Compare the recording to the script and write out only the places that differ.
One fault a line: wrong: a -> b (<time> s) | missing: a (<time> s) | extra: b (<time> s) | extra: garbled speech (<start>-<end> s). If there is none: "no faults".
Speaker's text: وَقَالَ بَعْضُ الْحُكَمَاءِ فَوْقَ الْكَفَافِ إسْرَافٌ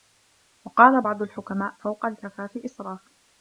no faults